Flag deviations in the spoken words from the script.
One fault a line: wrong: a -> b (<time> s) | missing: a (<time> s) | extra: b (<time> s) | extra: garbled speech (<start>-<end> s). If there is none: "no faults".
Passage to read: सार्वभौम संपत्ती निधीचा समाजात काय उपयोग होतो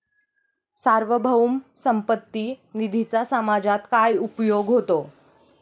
no faults